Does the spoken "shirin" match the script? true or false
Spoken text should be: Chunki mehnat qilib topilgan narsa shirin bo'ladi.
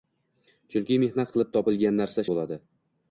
false